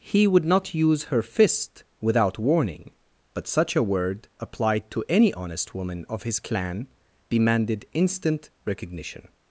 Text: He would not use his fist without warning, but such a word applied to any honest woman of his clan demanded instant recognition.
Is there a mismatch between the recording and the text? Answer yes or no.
yes